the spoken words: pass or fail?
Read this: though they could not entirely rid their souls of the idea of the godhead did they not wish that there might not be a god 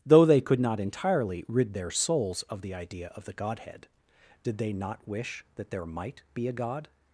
fail